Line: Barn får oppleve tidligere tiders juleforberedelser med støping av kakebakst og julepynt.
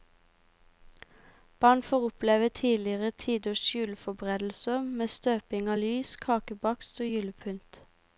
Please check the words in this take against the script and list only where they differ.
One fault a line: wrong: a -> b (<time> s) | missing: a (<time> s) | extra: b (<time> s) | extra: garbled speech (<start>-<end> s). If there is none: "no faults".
extra: lys (5.7 s)